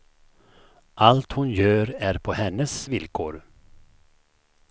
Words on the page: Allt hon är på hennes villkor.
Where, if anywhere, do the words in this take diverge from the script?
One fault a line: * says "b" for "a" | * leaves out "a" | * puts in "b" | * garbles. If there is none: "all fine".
* puts in "gör"